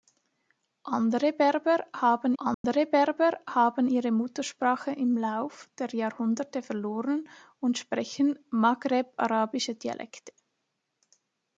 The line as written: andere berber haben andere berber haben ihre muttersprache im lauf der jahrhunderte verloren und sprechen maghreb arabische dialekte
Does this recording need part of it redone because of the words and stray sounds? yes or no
yes